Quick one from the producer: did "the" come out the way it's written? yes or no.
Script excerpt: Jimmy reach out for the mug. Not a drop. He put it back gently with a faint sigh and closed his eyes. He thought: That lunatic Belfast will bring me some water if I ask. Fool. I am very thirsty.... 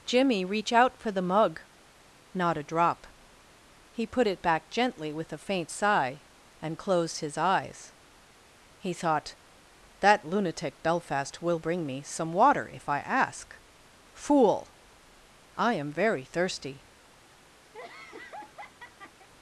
yes